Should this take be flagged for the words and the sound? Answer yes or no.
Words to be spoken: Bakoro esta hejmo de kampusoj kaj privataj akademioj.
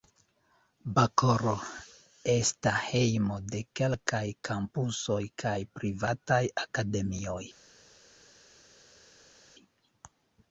yes